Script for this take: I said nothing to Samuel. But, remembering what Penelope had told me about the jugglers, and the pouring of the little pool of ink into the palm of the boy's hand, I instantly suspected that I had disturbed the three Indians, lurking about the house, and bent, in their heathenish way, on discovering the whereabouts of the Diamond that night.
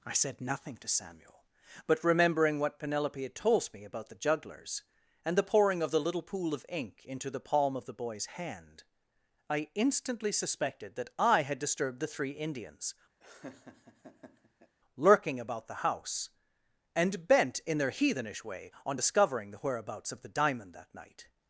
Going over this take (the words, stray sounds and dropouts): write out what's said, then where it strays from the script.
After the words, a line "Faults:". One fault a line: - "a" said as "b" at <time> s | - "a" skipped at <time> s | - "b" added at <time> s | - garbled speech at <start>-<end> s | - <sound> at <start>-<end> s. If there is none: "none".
I said nothing to Samuel. But, remembering what Penelope had told me about the jugglers, and the pouring of the little pool of ink into the palm of the boy's hand, I instantly suspected that I had disturbed the three Indians, lurking about the house, and bent, in their heathenish way, on discovering the whereabouts of the Diamond that night.
Faults:
- laugh at 13.2-14.8 s